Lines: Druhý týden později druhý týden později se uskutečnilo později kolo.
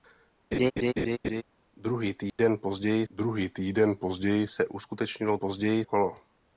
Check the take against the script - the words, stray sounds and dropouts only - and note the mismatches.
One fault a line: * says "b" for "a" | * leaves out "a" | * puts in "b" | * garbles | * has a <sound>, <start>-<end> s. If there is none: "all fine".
* has a laugh, 0.5-1.4 s
* has a dropout, 2.3-2.4 s